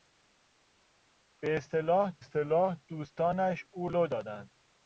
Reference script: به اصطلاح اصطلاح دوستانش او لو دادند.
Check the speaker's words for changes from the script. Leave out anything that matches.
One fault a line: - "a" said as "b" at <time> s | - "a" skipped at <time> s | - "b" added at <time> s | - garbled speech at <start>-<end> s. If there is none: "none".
none